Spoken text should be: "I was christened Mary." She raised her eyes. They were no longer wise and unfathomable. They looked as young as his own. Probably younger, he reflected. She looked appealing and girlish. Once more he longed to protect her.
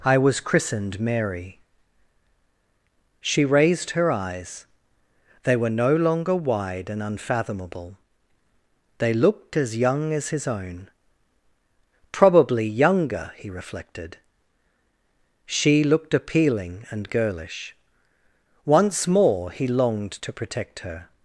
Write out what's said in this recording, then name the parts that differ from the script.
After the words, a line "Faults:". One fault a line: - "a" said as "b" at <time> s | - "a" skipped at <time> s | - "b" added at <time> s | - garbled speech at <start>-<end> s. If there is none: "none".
"I was christened Mary." She raised her eyes. They were no longer wide and unfathomable. They looked as young as his own. Probably younger, he reflected. She looked appealing and girlish. Once more he longed to protect her.
Faults:
- "wise" said as "wide" at 6.3 s